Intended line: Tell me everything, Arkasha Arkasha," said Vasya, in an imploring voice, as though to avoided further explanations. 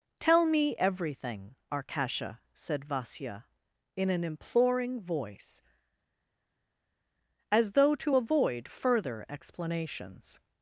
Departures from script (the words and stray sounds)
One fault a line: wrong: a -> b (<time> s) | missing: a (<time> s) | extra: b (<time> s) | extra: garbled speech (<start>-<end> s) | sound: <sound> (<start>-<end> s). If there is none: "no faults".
missing: Arkasha (2.4 s)
wrong: avoided -> avoid (8.1 s)